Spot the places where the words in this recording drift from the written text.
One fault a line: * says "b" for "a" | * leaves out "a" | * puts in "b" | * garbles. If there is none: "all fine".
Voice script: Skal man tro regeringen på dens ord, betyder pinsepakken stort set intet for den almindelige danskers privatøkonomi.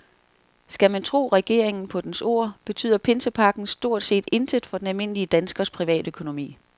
all fine